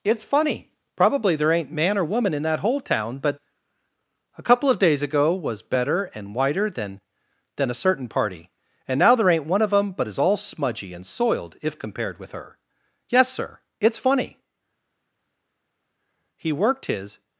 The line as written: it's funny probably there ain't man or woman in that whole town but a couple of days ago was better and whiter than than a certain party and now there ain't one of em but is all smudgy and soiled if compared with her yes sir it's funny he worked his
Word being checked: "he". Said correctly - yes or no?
yes